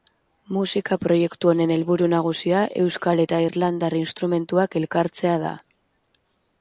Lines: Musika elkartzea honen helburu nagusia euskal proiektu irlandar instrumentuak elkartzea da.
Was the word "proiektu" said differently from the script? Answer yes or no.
yes